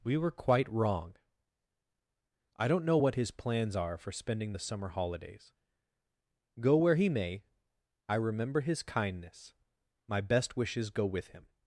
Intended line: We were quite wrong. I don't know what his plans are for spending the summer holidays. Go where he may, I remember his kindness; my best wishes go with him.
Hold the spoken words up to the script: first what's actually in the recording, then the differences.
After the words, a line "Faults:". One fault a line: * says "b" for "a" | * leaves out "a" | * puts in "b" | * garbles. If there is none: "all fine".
We were quite wrong. I don't know what his plans are for spending the summer holidays. Go where he may, I remember his kindness; my best wishes go with him.
Faults:
all fine